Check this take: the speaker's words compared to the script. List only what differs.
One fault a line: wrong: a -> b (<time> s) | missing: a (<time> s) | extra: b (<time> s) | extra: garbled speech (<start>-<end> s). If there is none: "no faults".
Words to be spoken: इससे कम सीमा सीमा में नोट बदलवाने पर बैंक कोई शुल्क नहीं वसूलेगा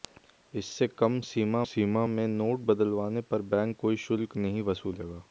no faults